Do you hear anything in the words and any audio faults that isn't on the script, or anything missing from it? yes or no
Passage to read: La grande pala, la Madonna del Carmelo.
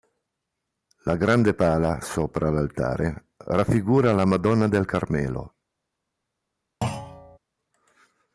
yes